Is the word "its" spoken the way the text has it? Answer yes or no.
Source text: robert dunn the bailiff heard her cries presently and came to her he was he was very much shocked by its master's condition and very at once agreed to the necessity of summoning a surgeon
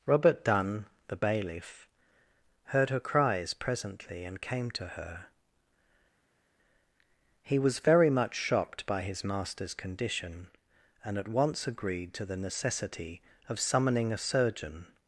no